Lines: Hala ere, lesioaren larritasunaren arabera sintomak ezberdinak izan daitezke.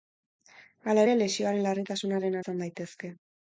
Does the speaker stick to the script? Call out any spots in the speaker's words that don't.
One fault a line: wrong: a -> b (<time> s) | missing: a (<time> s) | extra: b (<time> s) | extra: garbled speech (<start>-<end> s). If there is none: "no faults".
missing: arabera sintomak ezberdinak (2.4 s)